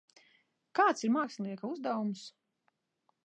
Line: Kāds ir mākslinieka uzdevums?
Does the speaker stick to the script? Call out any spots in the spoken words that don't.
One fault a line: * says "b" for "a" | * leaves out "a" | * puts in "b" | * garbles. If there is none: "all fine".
all fine